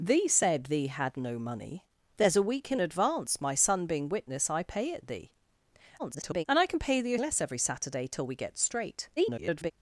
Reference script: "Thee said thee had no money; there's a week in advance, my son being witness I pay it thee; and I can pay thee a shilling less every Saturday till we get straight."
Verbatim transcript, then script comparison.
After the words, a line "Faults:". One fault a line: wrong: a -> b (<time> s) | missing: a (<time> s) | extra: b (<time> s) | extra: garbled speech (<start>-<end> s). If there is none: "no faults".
"Thee said thee had no money; there's a week in advance, my son being witness I pay it thee; [garbled] and I can pay thee a less every Saturday till we get straight." [garbled]
Faults:
extra: garbled speech (6.0-6.4 s)
missing: shilling (7.2 s)
extra: garbled speech (9.2-9.7 s)